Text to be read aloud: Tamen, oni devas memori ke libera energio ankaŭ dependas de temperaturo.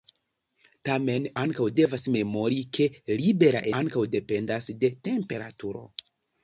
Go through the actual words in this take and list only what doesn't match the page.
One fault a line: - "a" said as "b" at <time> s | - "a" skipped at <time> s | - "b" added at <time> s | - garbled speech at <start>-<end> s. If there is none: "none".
- "oni" said as "ankaŭ" at 1.4 s
- "energio" skipped at 3.6 s